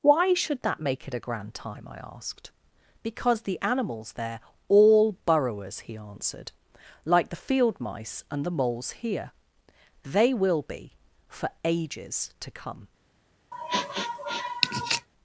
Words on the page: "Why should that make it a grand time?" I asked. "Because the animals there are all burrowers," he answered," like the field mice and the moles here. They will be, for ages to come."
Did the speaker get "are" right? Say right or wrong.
wrong